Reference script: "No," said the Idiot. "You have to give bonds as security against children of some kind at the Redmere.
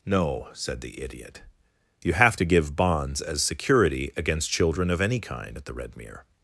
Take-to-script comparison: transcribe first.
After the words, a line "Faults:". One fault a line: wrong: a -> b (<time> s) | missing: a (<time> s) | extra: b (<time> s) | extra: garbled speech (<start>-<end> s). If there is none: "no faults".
"No," said the Idiot. "You have to give bonds as security against children of any kind at the Redmere.
Faults:
wrong: some -> any (5.0 s)